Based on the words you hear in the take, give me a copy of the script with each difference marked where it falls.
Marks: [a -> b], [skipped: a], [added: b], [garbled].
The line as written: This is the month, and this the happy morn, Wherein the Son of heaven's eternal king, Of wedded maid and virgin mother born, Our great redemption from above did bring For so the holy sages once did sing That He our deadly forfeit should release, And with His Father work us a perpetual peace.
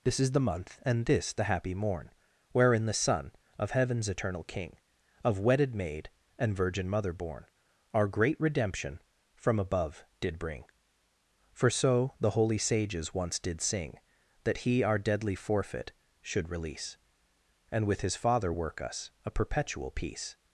This is the month, and this the happy morn, Wherein the Son of heaven's eternal king, Of wedded maid and virgin mother born, Our great redemption from above did bring For so the holy sages once did sing That He our deadly forfeit should release, And with His Father work us a perpetual peace.